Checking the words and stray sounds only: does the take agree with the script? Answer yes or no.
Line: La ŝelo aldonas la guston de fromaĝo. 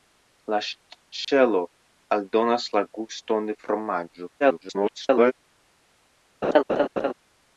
no